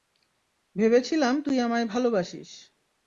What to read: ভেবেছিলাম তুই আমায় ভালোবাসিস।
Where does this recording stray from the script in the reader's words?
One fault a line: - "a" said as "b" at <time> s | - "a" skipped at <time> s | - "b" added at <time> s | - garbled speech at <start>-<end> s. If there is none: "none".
none